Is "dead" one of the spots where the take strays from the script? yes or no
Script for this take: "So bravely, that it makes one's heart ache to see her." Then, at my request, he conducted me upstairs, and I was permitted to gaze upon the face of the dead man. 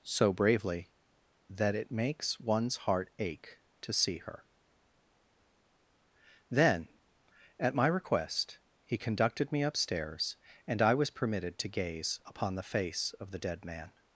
no